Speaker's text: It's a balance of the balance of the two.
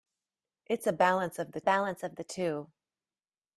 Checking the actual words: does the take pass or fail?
pass